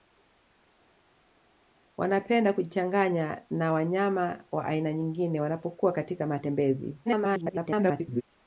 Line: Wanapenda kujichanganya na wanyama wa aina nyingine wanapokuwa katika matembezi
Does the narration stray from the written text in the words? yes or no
yes